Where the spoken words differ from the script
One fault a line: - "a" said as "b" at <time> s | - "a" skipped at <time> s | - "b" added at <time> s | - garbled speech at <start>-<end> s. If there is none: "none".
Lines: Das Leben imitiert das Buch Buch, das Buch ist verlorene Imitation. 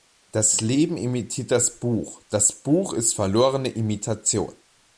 - "Buch" skipped at 2.2 s